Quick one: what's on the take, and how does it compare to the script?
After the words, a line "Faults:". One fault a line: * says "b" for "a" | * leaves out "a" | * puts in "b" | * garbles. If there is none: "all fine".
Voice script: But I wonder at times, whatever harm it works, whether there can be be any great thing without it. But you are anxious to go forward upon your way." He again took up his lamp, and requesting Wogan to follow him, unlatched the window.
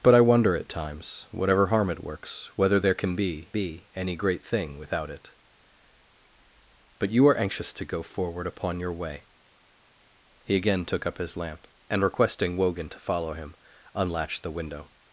But I wonder at times, whatever harm it works, whether there can be be any great thing without it. But you are anxious to go forward upon your way." He again took up his lamp, and requesting Wogan to follow him, unlatched the window.
Faults:
all fine